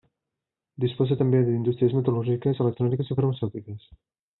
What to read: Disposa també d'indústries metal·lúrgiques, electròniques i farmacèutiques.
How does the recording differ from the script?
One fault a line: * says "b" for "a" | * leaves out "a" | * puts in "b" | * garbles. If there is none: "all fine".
all fine